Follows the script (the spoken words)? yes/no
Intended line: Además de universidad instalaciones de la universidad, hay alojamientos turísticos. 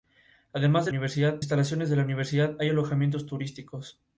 yes